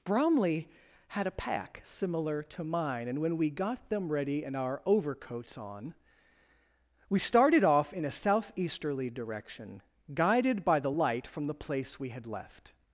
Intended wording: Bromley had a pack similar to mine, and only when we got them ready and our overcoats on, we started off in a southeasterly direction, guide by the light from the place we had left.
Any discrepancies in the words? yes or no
yes